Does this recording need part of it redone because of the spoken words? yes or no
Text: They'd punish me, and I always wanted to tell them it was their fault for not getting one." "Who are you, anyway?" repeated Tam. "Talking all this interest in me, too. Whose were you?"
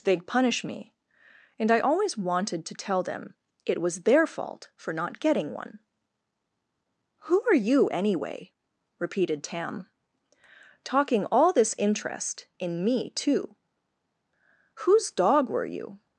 yes